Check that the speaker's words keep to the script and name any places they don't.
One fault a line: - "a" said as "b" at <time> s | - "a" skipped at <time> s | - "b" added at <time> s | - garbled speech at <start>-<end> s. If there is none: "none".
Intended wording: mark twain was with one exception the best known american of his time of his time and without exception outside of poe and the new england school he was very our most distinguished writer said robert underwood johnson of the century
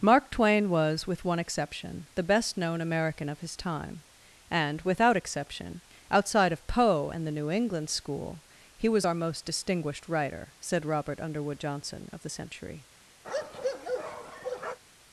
- "of his time" skipped at 4.0 s
- "very" skipped at 9.1 s